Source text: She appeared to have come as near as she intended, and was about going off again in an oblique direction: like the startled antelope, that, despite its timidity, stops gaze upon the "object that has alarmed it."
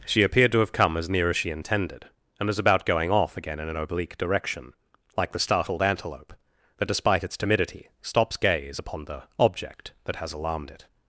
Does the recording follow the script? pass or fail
pass